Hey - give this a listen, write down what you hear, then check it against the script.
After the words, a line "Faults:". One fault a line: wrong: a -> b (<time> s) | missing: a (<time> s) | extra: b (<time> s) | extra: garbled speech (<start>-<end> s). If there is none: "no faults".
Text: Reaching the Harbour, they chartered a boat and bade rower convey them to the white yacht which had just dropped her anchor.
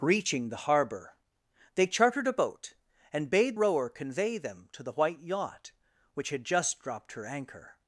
Reaching the Harbour, they chartered a boat and bade rower convey them to the white yacht which had just dropped her anchor.
Faults:
no faults